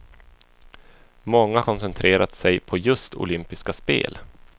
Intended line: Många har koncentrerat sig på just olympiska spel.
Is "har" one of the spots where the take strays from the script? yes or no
yes